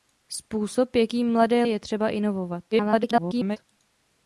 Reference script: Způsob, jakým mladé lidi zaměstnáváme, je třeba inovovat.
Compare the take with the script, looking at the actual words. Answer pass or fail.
fail